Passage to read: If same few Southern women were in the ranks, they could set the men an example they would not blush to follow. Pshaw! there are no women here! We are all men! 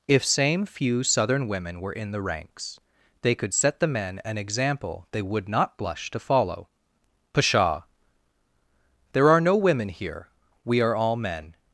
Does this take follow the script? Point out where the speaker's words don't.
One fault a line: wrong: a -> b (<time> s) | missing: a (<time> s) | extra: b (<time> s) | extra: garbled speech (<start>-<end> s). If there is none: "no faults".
no faults